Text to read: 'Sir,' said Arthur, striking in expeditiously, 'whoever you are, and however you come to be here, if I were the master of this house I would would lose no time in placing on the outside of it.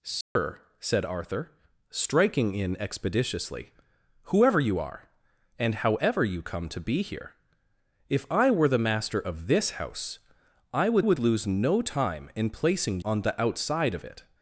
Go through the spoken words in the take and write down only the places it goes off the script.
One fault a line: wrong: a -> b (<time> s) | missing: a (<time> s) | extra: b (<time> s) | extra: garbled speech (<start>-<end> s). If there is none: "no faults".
no faults